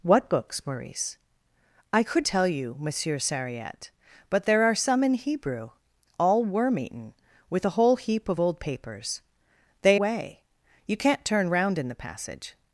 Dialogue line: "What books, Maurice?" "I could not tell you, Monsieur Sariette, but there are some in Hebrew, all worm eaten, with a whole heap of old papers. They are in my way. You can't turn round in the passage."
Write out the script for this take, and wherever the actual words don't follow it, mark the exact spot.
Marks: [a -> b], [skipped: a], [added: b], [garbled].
"What books, Maurice?" "I could [skipped: not] tell you, Monsieur Sariette, but there are some in Hebrew, all worm eaten, with a whole heap of old papers. They [skipped: are in my] way. You can't turn round in the passage."